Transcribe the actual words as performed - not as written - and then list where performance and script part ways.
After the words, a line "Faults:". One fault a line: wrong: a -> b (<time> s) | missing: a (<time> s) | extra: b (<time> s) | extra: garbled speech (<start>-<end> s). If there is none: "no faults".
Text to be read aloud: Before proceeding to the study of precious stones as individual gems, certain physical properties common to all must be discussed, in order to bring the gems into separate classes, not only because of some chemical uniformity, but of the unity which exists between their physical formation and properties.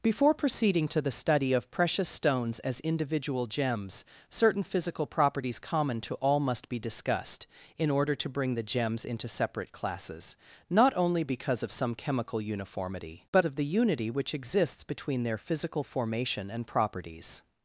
Before proceeding to the study of precious stones as individual gems, certain physical properties common to all must be discussed, in order to bring the gems into separate classes, not only because of some chemical uniformity, but of the unity which exists between their physical formation and properties.
Faults:
no faults